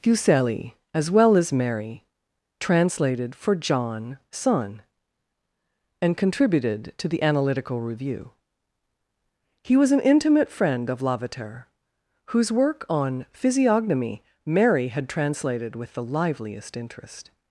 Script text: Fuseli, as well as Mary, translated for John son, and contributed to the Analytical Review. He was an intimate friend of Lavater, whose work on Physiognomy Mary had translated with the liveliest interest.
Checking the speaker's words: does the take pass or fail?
pass